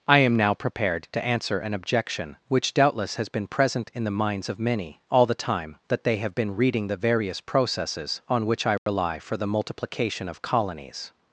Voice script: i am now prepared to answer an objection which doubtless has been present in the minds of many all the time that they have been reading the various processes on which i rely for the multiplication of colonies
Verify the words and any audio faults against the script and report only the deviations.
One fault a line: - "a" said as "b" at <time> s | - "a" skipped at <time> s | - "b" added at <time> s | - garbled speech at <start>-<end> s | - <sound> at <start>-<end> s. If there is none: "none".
- dropout at 8.8-8.9 s